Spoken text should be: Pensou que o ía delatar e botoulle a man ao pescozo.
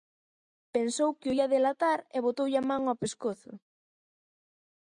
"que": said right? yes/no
yes